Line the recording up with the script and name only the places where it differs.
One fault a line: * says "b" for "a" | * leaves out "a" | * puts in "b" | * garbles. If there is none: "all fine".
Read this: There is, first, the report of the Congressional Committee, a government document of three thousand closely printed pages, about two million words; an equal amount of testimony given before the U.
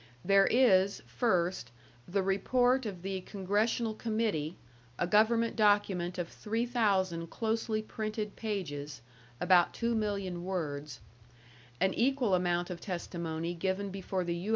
all fine